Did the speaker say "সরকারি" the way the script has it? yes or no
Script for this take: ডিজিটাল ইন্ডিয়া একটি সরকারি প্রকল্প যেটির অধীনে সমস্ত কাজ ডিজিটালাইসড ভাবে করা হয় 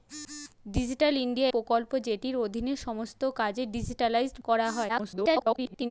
no